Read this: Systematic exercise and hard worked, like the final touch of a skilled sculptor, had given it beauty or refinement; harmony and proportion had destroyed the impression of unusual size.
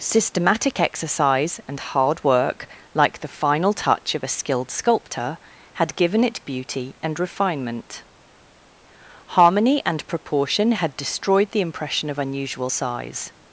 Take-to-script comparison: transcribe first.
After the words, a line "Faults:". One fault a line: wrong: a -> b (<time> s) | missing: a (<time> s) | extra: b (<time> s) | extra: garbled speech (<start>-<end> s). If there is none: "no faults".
Systematic exercise and hard work, like the final touch of a skilled sculptor, had given it beauty and refinement; harmony and proportion had destroyed the impression of unusual size.
Faults:
wrong: worked -> work (2.2 s)
wrong: or -> and (7.0 s)